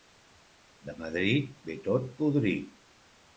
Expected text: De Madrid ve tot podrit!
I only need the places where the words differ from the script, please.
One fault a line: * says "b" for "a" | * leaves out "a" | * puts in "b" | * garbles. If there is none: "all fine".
all fine